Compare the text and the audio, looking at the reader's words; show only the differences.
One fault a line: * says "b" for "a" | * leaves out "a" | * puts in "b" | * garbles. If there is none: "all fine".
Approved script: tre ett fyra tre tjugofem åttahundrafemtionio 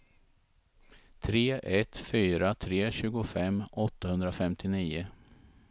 all fine